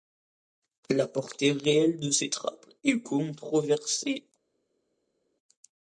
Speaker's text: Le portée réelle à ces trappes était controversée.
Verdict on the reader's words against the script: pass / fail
fail